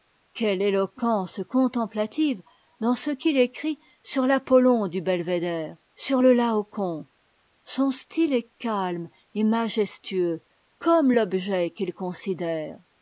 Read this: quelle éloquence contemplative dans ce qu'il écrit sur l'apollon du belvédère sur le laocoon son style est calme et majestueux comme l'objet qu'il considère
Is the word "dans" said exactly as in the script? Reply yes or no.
yes